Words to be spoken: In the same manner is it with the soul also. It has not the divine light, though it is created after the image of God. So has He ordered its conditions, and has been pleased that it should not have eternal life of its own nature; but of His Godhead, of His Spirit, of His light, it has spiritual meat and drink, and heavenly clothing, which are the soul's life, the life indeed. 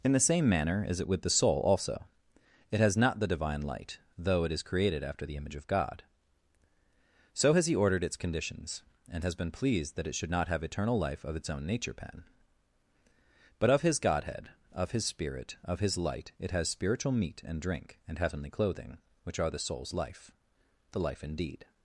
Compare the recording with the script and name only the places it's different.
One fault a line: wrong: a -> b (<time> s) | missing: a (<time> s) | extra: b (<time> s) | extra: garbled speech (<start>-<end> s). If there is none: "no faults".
extra: pen (11.9 s)